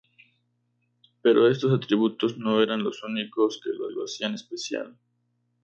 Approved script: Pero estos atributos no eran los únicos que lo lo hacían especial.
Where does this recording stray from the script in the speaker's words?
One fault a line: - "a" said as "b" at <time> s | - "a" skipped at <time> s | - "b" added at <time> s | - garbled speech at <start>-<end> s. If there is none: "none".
none